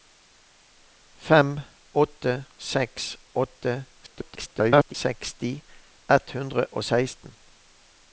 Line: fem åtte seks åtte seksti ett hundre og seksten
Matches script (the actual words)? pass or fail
fail